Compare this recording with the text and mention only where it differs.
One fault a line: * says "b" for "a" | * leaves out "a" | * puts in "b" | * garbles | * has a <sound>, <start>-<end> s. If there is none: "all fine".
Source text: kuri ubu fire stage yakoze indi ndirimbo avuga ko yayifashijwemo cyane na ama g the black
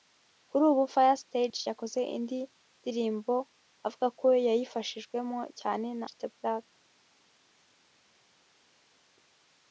* leaves out "ama"